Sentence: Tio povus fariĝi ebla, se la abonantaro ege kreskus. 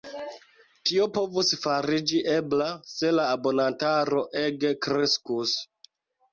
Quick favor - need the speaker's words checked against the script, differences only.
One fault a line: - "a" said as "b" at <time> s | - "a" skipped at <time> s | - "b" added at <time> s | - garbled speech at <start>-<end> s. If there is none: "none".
none